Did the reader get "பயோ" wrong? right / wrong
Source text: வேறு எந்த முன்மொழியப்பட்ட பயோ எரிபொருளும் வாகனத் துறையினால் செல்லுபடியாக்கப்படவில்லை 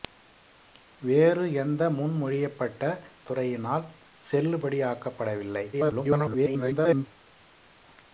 wrong